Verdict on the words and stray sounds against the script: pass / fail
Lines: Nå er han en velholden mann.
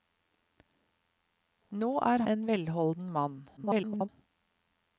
fail